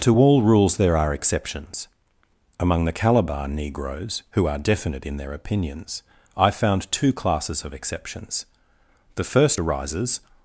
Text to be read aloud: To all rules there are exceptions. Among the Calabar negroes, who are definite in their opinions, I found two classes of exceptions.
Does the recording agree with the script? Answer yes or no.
no